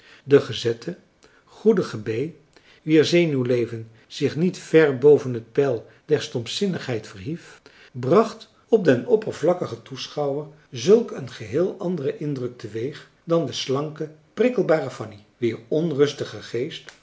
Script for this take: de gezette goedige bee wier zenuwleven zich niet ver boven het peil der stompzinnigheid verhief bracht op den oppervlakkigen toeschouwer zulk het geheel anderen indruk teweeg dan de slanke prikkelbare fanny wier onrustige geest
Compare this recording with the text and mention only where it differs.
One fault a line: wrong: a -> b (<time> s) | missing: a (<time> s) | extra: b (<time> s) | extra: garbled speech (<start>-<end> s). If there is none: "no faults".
wrong: het -> een (11.1 s)